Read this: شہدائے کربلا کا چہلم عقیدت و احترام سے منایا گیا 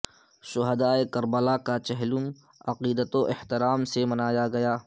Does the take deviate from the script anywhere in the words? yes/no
no